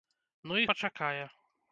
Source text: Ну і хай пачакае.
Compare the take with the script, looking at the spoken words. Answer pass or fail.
fail